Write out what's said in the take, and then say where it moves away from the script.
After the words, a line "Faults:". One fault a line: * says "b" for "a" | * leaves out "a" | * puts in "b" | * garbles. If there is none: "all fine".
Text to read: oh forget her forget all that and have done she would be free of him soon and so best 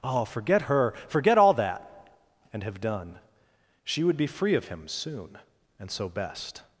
oh forget her forget all that and have done she would be free of him soon and so best
Faults:
all fine